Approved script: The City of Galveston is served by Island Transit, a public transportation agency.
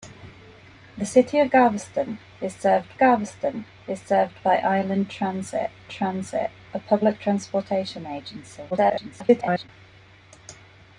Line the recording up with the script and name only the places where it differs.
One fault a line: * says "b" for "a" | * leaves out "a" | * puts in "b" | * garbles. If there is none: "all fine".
* puts in "Galveston is served"
* puts in "Transit"
* garbles